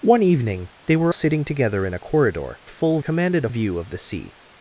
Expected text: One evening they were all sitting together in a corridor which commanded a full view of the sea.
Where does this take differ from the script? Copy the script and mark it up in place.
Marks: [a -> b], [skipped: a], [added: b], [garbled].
One evening they were [skipped: all] sitting together in a corridor [which -> full] commanded a [skipped: full] view of the sea.